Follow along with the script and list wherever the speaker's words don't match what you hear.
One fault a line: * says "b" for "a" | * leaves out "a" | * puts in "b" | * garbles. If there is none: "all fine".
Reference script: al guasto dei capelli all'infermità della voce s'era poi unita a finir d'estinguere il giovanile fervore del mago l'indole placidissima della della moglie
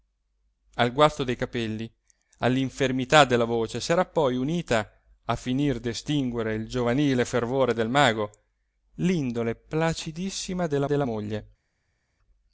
all fine